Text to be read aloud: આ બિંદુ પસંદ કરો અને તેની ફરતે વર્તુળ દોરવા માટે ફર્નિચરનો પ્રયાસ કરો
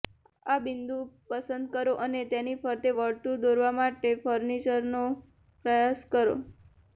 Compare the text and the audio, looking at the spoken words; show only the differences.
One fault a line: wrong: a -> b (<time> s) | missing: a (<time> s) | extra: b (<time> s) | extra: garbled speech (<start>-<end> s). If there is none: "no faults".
no faults